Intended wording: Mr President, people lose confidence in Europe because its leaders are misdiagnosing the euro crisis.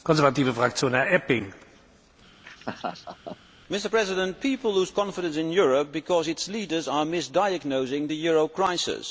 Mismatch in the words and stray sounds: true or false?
true